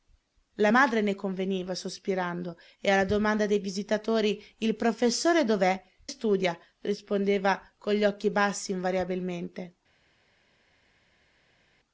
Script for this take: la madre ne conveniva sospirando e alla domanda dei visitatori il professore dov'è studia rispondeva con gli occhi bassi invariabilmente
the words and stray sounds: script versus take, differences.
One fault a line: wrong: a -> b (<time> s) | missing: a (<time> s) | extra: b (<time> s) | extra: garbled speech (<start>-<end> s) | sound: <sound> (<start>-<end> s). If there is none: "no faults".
no faults